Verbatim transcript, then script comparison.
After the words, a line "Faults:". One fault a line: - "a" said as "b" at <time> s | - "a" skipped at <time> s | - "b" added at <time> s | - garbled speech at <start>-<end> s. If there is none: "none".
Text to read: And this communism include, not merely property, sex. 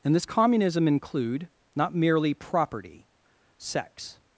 And this communism include, not merely property, sex.
Faults:
none